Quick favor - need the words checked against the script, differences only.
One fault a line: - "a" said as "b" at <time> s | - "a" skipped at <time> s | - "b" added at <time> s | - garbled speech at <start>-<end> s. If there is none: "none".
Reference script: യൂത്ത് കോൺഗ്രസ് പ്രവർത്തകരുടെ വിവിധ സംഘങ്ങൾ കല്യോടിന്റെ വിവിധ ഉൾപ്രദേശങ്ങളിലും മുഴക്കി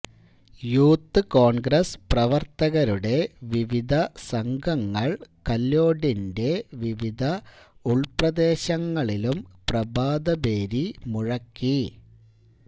- "പ്രഭാതഭേരി" added at 9.7 s